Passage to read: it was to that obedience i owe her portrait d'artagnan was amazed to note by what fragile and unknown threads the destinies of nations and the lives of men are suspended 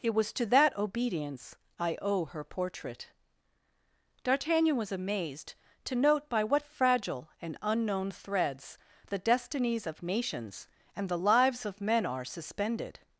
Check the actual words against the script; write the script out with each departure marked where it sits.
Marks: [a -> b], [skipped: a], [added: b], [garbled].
it was to that obedience i owe her portrait d'artagnan was amazed to note by what fragile and unknown threads the destinies of nations and the lives of men are suspended